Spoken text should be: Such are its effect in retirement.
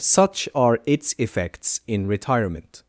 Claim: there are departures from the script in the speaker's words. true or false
true